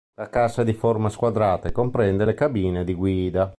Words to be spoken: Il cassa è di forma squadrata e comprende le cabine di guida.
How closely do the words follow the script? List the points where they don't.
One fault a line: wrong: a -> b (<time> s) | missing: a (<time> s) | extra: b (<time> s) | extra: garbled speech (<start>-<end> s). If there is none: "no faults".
wrong: Il -> La (0.1 s)